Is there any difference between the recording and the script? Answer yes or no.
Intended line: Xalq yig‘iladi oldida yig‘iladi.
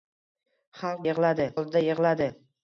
no